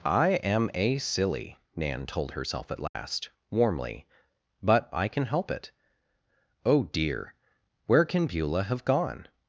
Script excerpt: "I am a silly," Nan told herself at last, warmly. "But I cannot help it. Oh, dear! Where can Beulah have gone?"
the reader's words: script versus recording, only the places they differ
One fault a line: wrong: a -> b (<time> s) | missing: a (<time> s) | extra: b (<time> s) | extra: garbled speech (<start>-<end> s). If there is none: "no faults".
wrong: cannot -> can (5.1 s)